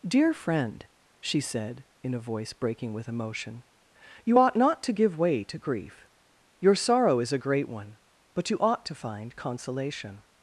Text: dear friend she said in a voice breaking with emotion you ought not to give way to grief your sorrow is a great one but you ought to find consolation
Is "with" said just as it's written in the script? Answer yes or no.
yes